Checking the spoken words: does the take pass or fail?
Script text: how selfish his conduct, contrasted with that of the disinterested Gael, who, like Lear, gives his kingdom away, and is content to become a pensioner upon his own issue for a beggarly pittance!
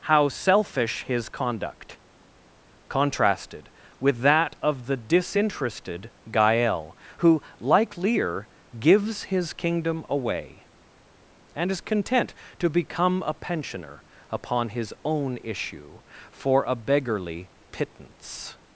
pass